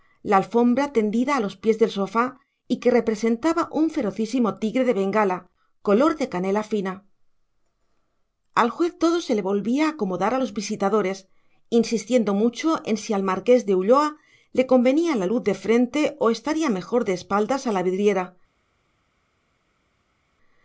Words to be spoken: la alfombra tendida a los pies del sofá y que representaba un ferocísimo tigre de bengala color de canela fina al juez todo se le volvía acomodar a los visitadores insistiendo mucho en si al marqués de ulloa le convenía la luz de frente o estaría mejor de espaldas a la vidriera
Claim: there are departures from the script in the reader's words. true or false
false